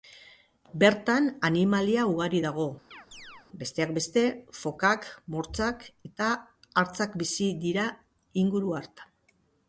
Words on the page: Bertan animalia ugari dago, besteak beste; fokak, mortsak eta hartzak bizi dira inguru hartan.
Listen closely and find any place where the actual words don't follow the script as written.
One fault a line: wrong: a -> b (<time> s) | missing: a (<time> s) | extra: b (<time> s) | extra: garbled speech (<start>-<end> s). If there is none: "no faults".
no faults